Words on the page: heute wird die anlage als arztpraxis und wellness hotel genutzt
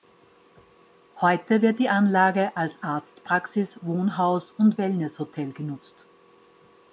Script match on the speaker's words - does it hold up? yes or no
no